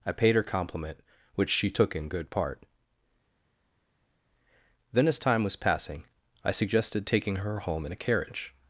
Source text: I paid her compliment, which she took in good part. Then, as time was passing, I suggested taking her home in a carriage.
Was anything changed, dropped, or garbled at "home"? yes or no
no